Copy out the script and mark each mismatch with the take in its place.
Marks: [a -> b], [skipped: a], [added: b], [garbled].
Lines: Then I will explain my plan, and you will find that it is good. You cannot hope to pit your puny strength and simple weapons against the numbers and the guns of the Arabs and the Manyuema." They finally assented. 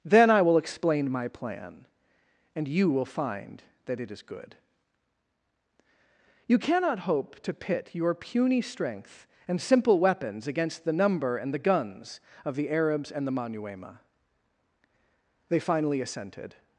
Then I will explain my plan, and you will find that it is good. You cannot hope to pit your puny strength and simple weapons against the [numbers -> number] and the guns of the Arabs and the Manyuema." They finally assented.